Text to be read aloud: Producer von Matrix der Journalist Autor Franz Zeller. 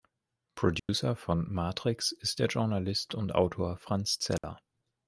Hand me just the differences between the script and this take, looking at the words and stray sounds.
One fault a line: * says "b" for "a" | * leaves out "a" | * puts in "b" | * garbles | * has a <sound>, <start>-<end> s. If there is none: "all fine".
* has a dropout, 0.8-0.9 s
* puts in "ist"
* puts in "und"
* has a dropout, 4.4-4.4 s